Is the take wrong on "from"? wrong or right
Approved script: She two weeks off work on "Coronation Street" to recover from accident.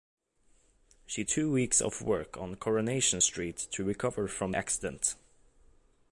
right